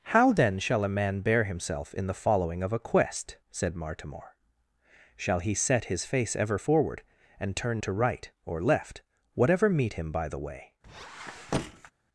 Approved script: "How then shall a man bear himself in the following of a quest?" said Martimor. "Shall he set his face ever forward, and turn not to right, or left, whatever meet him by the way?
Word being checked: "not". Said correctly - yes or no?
no